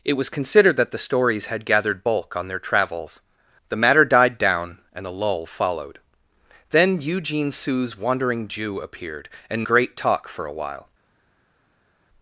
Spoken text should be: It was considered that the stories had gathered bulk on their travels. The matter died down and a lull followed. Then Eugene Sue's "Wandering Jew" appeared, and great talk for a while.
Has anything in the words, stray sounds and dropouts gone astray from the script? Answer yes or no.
no